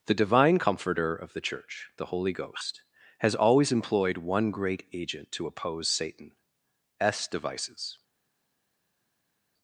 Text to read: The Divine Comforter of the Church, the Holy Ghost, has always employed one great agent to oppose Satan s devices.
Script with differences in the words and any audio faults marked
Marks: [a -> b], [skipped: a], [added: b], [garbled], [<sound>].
The Divine Comforter of the Church, the Holy Ghost, has always employed one great agent to oppose Satan s devices.